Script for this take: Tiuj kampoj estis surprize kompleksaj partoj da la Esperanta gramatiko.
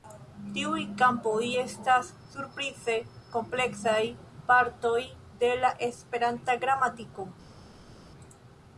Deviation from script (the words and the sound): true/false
true